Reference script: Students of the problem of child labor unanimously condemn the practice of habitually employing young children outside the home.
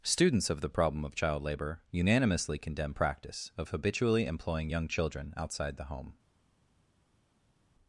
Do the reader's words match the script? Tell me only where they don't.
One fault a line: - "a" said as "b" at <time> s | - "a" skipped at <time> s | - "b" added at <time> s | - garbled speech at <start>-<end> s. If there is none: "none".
- "the" skipped at 3.0 s